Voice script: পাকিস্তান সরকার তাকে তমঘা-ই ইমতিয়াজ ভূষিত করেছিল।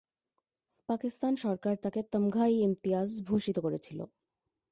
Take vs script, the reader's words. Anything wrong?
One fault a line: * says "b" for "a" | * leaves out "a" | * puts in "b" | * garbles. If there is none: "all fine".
all fine